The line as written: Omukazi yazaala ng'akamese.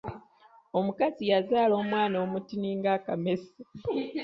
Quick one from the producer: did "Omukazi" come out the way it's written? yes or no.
yes